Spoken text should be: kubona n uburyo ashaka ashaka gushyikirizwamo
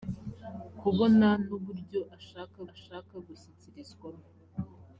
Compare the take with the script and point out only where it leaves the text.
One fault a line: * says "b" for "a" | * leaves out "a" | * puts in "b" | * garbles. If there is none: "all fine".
all fine